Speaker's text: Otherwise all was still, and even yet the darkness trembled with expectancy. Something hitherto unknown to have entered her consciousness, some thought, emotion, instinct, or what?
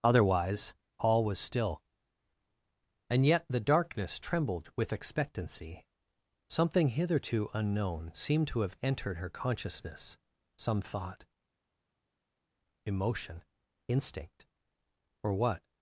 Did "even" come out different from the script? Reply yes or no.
yes